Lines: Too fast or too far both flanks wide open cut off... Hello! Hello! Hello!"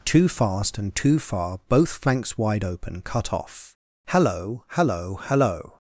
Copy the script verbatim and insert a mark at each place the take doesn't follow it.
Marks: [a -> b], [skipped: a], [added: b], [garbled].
Too fast [or -> and] too far both flanks wide open cut off... Hello! Hello! Hello!"